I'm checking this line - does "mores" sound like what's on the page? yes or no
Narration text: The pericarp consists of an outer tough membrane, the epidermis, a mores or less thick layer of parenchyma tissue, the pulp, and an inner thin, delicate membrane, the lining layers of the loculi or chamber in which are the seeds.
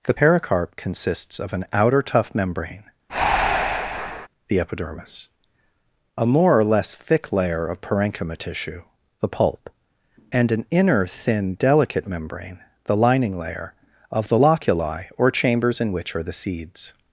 no